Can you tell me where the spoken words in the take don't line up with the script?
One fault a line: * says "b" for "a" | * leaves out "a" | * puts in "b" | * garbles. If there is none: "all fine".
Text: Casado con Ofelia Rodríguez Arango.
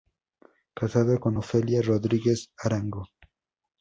all fine